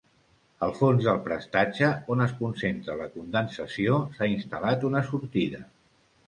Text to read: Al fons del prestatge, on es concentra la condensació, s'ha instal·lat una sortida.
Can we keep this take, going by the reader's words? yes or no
yes